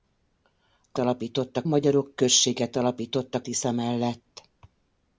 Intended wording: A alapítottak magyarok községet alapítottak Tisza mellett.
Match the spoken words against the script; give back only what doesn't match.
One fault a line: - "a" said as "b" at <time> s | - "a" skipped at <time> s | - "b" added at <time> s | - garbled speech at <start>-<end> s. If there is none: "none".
none